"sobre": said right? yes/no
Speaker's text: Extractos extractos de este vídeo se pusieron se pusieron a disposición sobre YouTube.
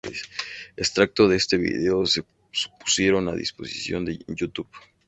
no